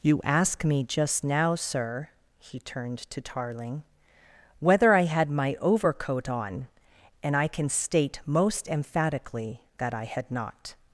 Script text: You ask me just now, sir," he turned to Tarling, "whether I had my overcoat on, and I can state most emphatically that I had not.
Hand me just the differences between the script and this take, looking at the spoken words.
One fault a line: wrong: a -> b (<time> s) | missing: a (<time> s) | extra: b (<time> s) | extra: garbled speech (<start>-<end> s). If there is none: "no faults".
no faults